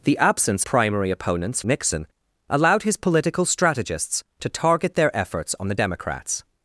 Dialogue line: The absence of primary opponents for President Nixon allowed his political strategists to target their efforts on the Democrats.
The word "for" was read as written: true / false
false